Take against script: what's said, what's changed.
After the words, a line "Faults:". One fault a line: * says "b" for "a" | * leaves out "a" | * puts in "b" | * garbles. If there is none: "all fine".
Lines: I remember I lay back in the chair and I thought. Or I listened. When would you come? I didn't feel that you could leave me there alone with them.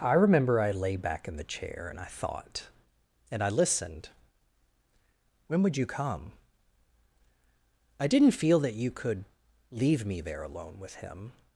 I remember I lay back in the chair and I thought. And I listened. When would you come? I didn't feel that you could leave me there alone with him.
Faults:
* says "And" for "Or"
* says "him" for "them"